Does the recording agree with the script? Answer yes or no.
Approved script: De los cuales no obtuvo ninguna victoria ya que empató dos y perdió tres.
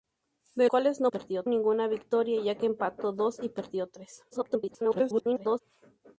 no